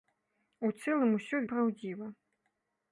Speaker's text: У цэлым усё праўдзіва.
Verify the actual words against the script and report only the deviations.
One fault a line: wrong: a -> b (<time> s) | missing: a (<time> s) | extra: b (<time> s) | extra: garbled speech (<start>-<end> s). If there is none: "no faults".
no faults